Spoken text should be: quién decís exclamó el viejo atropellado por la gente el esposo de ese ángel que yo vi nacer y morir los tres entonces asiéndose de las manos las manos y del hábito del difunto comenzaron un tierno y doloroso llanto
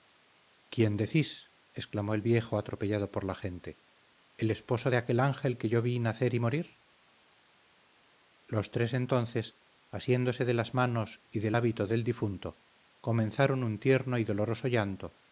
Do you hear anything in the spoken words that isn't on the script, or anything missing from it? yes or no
yes